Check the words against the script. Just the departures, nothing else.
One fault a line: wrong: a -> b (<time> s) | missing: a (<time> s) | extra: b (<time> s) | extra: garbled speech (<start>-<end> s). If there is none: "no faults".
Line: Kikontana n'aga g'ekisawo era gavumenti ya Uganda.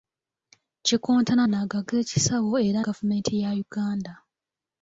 no faults